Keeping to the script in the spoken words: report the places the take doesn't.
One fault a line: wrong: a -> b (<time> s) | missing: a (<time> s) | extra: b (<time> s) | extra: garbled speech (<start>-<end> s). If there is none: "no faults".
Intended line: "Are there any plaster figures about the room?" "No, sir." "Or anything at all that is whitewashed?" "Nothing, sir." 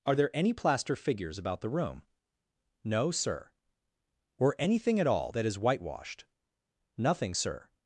no faults